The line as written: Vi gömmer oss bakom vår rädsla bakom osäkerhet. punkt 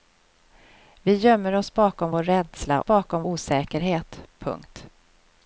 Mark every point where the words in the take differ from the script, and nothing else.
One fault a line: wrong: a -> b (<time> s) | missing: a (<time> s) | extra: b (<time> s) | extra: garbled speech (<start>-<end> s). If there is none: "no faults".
no faults